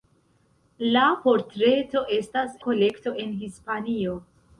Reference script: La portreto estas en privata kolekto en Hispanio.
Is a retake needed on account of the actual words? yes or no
yes